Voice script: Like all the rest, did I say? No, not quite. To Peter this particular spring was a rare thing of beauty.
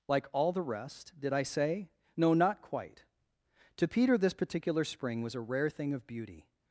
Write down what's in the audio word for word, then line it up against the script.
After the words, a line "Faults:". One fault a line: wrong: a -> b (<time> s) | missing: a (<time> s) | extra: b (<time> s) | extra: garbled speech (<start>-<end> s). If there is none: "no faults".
Like all the rest, did I say? No, not quite. To Peter this particular spring was a rare thing of beauty.
Faults:
no faults